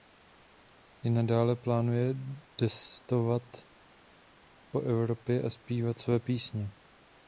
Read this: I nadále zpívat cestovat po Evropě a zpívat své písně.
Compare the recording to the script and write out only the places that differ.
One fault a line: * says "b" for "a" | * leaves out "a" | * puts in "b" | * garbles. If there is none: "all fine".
* says "plánuje" for "zpívat"